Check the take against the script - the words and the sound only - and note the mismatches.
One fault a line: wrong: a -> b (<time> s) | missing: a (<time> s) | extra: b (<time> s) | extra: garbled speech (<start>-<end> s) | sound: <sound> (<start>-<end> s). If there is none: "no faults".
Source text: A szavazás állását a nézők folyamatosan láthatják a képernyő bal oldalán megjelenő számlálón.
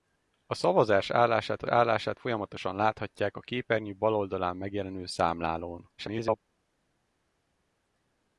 wrong: nézők -> állását (1.7 s)
extra: garbled speech (6.0-6.4 s)